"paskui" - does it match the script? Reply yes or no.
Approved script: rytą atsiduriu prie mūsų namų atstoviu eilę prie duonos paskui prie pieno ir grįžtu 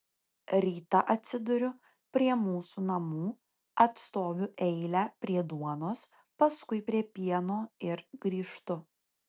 yes